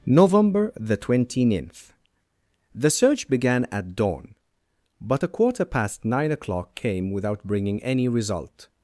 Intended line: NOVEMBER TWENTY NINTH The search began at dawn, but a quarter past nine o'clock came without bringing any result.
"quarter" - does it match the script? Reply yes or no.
yes